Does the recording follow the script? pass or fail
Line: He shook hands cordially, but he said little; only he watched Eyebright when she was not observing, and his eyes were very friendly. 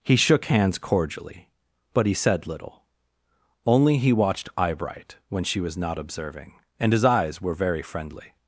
pass